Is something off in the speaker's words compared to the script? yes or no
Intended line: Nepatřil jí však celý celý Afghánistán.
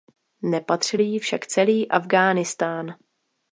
yes